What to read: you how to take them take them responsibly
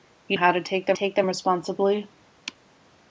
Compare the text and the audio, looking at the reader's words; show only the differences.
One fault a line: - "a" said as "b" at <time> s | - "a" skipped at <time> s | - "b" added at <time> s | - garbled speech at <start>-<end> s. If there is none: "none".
none